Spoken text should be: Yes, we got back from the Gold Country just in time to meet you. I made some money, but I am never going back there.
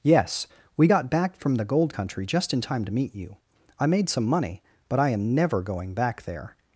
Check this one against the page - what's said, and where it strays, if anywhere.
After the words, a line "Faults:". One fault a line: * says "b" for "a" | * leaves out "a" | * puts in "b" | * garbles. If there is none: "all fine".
Yes, we got back from the Gold Country just in time to meet you. I made some money, but I am never going back there.
Faults:
all fine